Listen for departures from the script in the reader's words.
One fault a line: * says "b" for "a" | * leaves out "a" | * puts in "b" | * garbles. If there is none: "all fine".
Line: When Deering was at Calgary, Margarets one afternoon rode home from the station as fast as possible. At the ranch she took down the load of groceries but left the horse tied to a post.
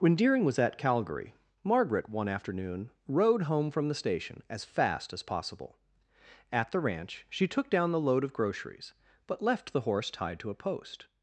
* says "Margaret" for "Margarets"